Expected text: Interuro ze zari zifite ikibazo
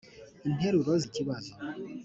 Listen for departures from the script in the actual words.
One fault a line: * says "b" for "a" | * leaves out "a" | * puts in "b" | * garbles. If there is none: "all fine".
* leaves out "ze zari zifite"